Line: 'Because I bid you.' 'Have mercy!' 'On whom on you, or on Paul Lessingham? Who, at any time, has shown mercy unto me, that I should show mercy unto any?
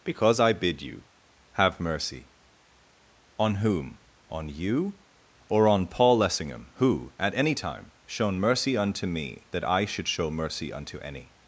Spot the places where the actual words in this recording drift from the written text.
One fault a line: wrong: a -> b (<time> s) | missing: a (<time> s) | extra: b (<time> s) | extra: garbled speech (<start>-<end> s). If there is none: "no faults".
missing: has (7.9 s)